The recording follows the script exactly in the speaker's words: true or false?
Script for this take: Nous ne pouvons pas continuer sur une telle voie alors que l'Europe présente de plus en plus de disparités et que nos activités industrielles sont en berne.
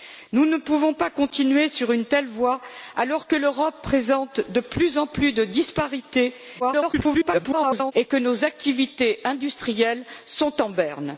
false